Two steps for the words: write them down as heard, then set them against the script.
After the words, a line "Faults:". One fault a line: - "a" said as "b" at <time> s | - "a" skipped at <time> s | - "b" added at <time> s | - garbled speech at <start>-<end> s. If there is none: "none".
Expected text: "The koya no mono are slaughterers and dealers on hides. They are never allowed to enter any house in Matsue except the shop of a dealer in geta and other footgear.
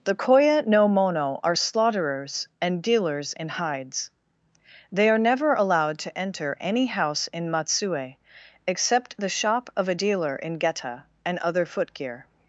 "The koya no mono are slaughterers and dealers in hides. They are never allowed to enter any house in Matsue except the shop of a dealer in geta and other footgear.
Faults:
- "on" said as "in" at 3.3 s